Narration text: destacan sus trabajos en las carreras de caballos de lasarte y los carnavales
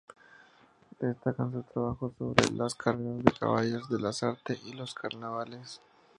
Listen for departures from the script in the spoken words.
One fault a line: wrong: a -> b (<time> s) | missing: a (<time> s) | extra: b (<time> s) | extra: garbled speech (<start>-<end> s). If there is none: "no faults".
wrong: en -> sobre (2.2 s)